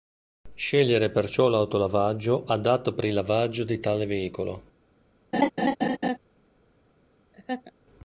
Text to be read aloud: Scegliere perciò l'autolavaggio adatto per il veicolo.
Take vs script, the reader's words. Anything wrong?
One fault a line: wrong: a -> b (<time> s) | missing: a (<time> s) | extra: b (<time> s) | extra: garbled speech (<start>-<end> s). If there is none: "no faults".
extra: lavaggio di tale (3.1 s)